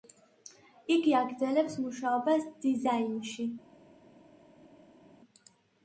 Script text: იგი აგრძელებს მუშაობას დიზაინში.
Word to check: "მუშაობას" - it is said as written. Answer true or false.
true